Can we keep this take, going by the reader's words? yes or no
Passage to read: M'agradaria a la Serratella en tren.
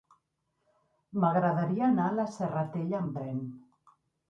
no